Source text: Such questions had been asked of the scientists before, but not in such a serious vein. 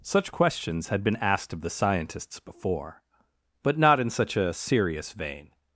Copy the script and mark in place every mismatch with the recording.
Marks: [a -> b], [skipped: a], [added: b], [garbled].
Such questions had been asked of the scientists before, but not in such a serious vein.